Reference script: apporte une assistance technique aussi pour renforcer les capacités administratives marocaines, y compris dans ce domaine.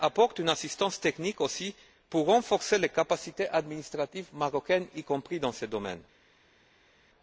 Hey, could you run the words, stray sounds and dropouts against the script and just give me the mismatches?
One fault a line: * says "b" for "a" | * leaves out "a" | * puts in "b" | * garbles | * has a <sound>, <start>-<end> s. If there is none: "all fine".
all fine